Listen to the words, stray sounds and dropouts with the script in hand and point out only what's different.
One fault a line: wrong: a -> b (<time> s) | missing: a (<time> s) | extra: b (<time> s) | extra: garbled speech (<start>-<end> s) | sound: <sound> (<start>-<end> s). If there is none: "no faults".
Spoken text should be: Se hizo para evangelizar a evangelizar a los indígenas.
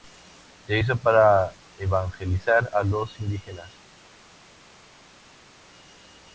missing: evangelizar a (2.8 s)